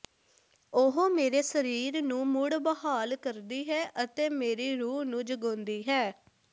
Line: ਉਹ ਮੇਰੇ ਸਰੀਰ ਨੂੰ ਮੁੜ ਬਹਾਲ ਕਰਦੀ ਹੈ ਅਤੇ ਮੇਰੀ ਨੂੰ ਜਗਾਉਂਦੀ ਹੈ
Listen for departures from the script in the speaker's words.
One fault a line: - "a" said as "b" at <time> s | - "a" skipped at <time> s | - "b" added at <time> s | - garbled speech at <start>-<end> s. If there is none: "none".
- "ਰੂਹ" added at 4.8 s